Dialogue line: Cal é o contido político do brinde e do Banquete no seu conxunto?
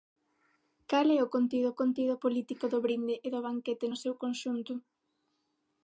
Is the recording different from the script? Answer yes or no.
yes